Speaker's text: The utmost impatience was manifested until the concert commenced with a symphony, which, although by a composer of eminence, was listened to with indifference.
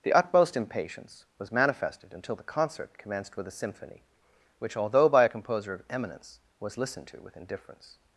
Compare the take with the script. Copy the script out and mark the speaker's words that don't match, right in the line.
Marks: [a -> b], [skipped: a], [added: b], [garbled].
The utmost impatience was manifested until the concert commenced with a symphony, which, although by a composer of eminence, was listened to with indifference.